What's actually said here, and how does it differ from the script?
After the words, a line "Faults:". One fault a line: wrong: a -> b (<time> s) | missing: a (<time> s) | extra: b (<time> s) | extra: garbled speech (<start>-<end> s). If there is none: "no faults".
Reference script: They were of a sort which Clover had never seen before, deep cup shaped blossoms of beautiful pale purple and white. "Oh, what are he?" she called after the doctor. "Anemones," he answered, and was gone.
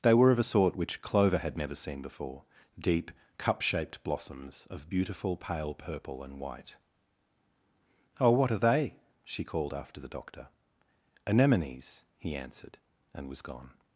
They were of a sort which Clover had never seen before, deep cup shaped blossoms of beautiful pale purple and white. "Oh, what are they?" she called after the doctor. "Anemones," he answered, and was gone.
Faults:
wrong: he -> they (8.6 s)